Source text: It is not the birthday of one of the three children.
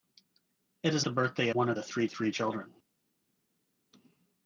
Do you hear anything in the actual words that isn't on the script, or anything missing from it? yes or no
yes